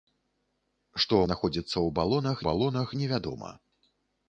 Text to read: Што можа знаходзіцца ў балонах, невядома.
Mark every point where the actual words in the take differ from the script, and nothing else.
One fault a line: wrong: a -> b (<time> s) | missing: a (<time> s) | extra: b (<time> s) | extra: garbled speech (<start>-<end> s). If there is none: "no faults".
missing: можа (1.2 s)
extra: балонах (2.5 s)